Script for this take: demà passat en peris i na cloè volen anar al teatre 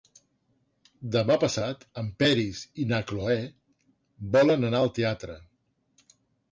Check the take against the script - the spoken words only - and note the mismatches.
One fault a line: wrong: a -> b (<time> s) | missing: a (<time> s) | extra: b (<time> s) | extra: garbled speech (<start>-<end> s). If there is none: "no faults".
no faults